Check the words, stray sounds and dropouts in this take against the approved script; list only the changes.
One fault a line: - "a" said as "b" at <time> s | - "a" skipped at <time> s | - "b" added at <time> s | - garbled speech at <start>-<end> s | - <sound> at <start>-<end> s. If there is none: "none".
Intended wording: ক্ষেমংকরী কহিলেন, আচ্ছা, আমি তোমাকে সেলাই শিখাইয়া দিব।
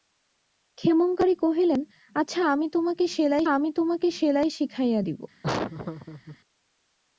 - "আমি তোমাকে সেলাই" added at 3.5 s
- laugh at 5.4-6.4 s